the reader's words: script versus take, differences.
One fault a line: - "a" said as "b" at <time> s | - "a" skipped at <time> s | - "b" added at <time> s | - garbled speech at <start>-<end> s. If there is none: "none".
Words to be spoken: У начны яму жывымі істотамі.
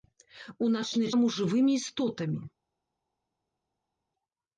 none